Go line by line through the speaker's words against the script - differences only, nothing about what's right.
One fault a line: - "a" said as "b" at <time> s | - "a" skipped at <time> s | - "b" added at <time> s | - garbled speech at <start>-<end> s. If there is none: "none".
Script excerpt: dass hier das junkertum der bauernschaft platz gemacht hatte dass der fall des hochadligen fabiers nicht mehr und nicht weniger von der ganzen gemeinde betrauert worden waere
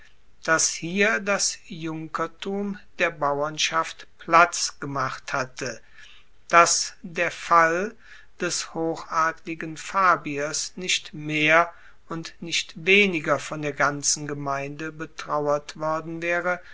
none